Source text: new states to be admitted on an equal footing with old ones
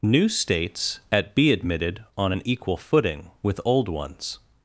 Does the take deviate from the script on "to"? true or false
true